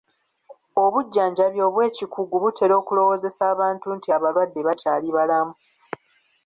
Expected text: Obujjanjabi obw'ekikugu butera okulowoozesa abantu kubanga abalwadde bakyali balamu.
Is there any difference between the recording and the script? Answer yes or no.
yes